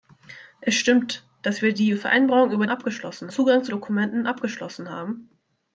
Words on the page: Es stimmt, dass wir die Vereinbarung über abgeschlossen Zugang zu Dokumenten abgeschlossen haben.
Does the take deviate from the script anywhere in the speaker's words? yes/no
no